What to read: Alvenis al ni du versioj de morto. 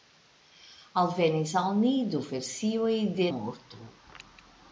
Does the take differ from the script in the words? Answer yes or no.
no